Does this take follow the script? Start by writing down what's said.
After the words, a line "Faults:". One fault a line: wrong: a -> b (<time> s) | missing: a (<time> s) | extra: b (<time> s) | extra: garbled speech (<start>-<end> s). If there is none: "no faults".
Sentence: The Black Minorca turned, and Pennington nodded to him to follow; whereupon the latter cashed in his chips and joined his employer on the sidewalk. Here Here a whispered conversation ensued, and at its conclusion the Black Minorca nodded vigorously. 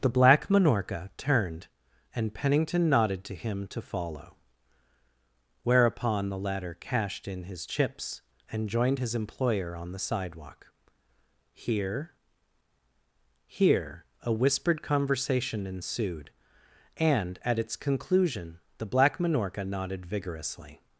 The Black Minorca turned, and Pennington nodded to him to follow; whereupon the latter cashed in his chips and joined his employer on the sidewalk. Here Here a whispered conversation ensued, and at its conclusion the Black Minorca nodded vigorously.
Faults:
no faults